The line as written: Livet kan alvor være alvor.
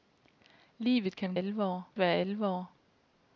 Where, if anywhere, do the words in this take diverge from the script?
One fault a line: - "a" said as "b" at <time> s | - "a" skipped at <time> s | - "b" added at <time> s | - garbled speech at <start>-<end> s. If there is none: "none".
none